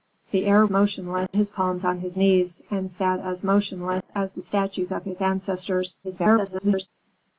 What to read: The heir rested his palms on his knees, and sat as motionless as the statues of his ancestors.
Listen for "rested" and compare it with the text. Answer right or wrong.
wrong